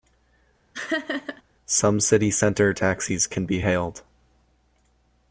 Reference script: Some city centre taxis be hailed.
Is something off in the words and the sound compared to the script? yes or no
yes